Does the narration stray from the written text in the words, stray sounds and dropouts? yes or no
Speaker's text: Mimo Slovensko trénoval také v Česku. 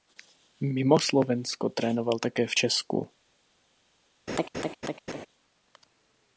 yes